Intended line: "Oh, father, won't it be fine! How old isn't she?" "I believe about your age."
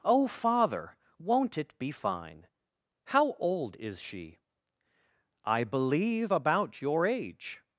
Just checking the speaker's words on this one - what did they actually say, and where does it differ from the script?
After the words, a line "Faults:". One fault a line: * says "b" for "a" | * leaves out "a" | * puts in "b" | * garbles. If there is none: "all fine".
"Oh, father, won't it be fine! How old is she?" "I believe about your age."
Faults:
* says "is" for "isn't"